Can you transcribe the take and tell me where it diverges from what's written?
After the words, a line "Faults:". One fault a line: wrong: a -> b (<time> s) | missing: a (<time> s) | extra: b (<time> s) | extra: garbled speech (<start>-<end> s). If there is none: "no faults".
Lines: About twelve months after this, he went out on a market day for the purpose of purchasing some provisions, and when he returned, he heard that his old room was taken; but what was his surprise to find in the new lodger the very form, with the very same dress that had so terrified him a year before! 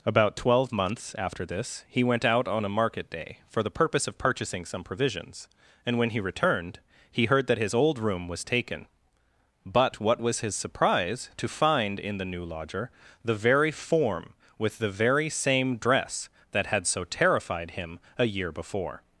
About twelve months after this, he went out on a market day for the purpose of purchasing some provisions, and when he returned, he heard that his old room was taken; but what was his surprise to find in the new lodger the very form, with the very same dress that had so terrified him a year before!
Faults:
no faults